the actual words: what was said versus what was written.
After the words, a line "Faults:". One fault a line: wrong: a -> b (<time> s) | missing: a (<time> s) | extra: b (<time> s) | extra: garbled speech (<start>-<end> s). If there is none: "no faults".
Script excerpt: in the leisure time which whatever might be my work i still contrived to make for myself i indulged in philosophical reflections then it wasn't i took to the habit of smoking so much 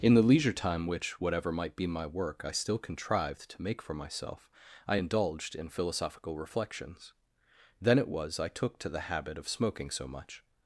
in the leisure time which whatever might be my work i still contrived to make for myself i indulged in philosophical reflections then it was i took to the habit of smoking so much
Faults:
wrong: wasn't -> was (8.1 s)